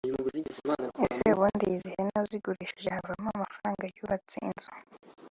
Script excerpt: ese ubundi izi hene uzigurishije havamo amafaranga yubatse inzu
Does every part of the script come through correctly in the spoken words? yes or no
yes